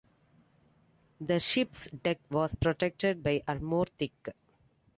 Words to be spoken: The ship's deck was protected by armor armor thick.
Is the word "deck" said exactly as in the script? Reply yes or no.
yes